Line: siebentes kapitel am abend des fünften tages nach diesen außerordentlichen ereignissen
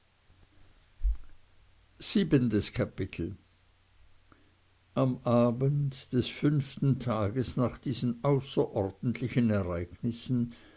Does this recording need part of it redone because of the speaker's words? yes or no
no